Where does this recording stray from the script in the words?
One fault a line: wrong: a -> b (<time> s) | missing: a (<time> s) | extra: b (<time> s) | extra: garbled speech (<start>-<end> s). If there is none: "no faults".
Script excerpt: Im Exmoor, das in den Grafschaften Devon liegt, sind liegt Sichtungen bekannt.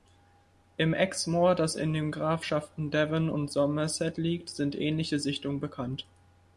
extra: und Somerset (3.3 s)
wrong: liegt -> ähnliche (4.8 s)